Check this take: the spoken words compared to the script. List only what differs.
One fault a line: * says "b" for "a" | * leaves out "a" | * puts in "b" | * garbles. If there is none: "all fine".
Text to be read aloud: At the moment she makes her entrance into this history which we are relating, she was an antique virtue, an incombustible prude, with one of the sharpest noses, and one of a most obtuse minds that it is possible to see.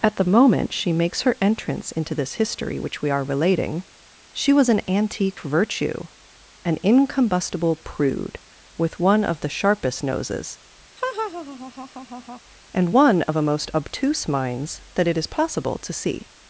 all fine